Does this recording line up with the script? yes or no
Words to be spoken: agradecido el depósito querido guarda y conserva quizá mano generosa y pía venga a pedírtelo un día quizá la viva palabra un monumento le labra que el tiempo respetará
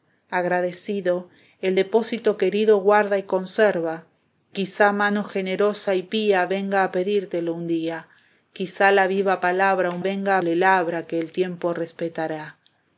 no